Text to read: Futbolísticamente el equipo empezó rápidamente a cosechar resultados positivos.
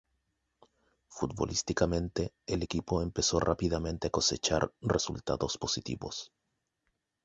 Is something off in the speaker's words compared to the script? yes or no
no